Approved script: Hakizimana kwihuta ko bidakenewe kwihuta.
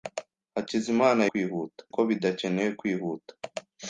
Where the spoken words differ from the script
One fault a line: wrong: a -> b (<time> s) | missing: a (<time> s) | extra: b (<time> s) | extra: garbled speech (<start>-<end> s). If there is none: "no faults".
no faults